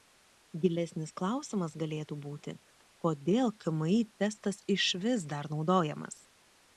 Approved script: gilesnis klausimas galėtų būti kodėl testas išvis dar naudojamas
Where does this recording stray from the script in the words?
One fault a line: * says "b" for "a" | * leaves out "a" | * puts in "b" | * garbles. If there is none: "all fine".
* puts in "kmi"